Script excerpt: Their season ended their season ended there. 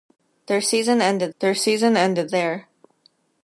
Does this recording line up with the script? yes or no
yes